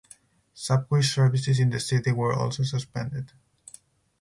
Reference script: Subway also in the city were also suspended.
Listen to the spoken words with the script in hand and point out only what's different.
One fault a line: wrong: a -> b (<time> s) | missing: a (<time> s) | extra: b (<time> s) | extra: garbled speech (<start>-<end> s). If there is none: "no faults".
wrong: also -> services (1.0 s)